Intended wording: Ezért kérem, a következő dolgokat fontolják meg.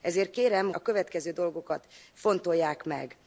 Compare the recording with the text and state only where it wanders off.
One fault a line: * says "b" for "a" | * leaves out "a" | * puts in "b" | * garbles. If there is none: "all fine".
all fine